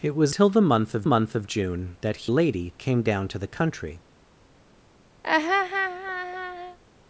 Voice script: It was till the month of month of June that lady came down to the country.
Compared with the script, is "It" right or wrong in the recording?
right